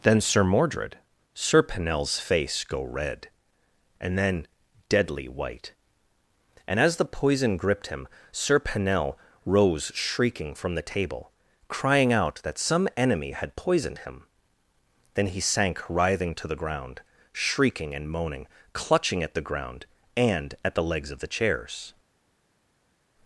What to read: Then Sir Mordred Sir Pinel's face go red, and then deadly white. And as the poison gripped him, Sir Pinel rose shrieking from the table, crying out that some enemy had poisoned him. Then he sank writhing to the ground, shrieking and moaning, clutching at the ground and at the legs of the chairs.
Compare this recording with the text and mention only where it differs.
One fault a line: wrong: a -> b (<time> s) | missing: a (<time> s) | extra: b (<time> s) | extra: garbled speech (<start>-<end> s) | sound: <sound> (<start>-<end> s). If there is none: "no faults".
no faults